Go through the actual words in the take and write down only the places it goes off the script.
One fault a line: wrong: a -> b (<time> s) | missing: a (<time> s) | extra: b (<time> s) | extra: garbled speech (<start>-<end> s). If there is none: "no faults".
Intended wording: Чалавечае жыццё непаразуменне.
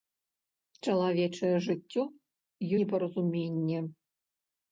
no faults